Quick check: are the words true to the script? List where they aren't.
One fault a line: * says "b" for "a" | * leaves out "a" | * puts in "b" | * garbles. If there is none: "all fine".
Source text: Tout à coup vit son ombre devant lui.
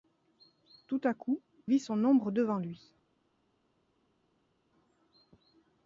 all fine